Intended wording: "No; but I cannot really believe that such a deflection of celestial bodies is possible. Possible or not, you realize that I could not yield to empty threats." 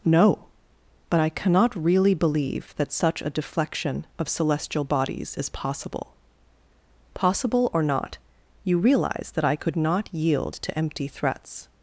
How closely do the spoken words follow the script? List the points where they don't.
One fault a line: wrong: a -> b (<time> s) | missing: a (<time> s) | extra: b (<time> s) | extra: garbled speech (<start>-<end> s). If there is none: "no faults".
no faults